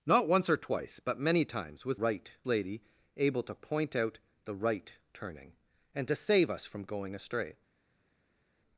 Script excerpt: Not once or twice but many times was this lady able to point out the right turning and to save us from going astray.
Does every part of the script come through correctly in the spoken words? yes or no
no